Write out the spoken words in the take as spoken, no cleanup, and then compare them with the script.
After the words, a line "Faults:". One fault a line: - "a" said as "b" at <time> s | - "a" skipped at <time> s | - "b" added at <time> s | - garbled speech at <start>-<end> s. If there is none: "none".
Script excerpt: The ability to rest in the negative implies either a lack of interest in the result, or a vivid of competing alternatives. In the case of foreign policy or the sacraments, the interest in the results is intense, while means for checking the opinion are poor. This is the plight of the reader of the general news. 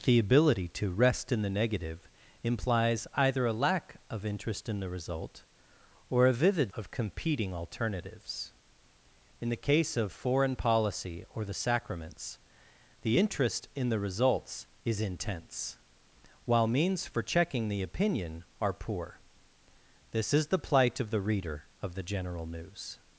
The ability to rest in the negative implies either a lack of interest in the result, or a vivid of competing alternatives. In the case of foreign policy or the sacraments, the interest in the results is intense, while means for checking the opinion are poor. This is the plight of the reader of the general news.
Faults:
none